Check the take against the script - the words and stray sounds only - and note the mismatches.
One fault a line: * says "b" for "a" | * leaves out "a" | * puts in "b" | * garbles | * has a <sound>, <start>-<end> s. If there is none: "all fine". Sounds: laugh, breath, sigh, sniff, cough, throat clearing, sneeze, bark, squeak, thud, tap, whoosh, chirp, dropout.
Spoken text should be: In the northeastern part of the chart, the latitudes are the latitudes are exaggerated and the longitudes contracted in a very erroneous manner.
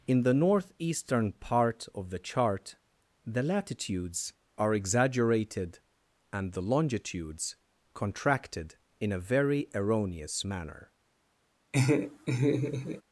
* leaves out "the latitudes are"
* has a laugh, 11.7-13.0 s